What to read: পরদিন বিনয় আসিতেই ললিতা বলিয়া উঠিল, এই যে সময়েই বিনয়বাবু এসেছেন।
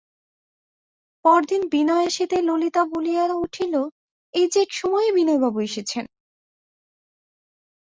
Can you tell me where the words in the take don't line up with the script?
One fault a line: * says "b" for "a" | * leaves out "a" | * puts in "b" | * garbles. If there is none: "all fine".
all fine